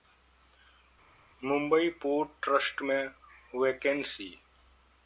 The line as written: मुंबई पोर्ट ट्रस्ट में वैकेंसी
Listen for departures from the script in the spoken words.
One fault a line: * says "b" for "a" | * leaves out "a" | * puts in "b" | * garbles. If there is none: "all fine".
all fine